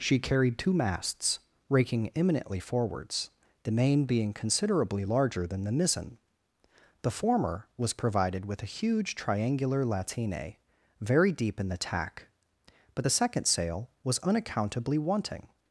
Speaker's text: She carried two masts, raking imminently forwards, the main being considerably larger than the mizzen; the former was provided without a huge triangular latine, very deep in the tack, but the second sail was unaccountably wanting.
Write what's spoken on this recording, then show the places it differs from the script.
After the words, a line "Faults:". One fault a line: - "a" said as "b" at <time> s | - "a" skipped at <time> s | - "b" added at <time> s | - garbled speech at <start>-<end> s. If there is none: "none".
She carried two masts, raking imminently forwards, the main being considerably larger than the mizzen; the former was provided with a huge triangular latine, very deep in the tack, but the second sail was unaccountably wanting.
Faults:
- "without" said as "with" at 8.4 s